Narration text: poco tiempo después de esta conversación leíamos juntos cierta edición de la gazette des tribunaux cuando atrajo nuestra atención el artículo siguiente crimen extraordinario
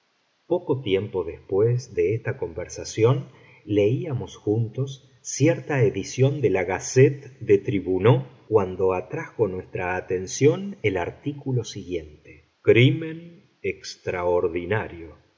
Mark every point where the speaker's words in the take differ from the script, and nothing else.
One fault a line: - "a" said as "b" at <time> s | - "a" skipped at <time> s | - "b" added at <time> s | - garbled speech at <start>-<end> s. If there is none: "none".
none